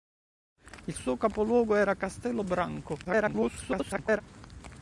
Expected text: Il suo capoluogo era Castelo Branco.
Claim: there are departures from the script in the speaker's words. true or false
true